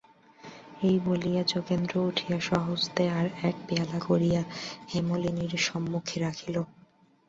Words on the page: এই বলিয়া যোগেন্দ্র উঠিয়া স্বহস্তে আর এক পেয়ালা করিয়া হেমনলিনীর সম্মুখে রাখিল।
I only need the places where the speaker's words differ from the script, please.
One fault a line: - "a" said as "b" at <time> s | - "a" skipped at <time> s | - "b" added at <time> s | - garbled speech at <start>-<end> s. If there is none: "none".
none